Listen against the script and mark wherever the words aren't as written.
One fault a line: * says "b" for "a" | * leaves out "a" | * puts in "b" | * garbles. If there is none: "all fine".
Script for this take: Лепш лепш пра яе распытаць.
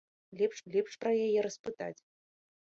all fine